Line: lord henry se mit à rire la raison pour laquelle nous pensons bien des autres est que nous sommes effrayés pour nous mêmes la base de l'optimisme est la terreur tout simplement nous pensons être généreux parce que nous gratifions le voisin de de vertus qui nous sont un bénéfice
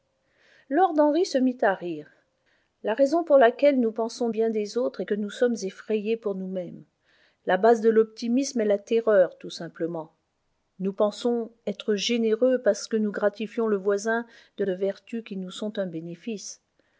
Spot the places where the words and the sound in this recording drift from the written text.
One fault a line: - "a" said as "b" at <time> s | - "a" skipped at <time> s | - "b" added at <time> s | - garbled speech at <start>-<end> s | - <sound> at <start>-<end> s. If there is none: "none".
none